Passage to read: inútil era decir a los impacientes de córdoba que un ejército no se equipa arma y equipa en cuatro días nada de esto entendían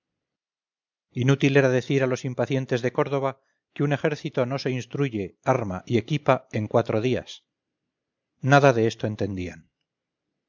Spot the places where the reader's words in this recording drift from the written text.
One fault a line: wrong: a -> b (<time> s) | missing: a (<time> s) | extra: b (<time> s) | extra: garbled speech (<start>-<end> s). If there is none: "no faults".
wrong: equipa -> instruye (4.7 s)